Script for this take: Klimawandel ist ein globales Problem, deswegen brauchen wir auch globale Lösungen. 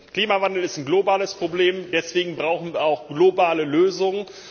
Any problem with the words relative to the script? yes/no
no